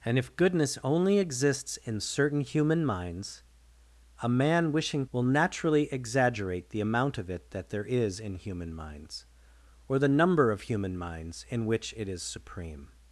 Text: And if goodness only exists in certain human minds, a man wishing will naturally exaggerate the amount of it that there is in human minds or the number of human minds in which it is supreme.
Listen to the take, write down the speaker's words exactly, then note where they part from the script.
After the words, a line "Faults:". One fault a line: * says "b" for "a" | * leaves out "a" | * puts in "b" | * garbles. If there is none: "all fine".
And if goodness only exists in certain human minds, a man wishing will naturally exaggerate the amount of it that there is in human minds or the number of human minds in which it is supreme.
Faults:
all fine